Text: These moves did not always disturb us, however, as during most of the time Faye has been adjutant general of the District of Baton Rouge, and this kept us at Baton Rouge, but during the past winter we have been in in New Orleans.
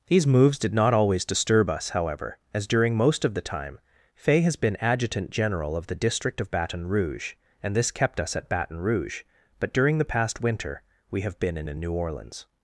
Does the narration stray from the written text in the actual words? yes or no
no